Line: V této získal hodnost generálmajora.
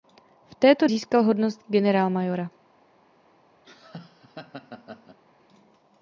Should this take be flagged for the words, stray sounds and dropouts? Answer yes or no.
yes